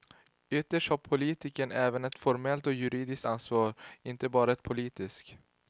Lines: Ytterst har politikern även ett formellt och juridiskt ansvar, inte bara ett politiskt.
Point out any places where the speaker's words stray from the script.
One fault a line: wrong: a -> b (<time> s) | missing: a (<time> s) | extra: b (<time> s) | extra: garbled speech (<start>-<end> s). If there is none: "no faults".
no faults